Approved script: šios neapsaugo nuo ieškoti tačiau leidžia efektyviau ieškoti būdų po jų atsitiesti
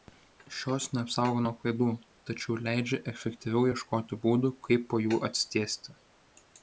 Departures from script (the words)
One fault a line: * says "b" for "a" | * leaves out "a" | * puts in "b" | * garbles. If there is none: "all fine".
* says "klaidų" for "ieškoti"
* puts in "kaip"